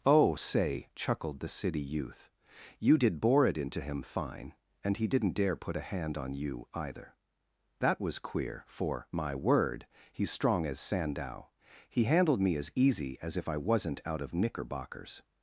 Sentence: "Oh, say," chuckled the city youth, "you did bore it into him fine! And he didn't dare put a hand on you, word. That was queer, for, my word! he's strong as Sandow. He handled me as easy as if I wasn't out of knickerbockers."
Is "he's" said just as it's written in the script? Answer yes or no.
yes